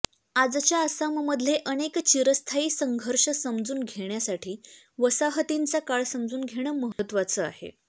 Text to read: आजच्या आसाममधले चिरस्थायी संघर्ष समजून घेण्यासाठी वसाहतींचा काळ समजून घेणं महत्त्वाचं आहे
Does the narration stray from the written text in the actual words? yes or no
yes